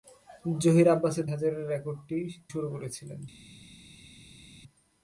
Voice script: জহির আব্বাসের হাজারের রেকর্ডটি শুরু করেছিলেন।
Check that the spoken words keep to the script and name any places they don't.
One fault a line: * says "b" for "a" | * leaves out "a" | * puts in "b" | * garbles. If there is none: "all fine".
all fine